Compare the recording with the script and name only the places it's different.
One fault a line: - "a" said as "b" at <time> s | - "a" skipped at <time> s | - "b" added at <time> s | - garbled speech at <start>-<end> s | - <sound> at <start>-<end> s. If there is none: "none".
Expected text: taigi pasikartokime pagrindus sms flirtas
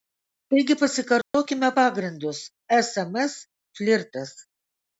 - dropout at 1.2-1.3 s